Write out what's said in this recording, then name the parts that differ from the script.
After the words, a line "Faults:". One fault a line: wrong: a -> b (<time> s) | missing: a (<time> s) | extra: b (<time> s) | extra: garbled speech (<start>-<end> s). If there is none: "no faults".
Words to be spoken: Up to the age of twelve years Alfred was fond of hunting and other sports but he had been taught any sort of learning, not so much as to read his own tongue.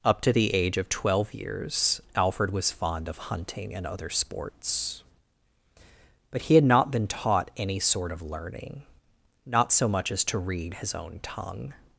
Up to the age of twelve years Alfred was fond of hunting and other sports but he had not been taught any sort of learning, not so much as to read his own tongue.
Faults:
extra: not (6.6 s)